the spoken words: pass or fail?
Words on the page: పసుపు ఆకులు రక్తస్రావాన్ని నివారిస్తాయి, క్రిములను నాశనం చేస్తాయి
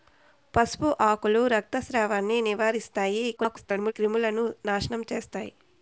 fail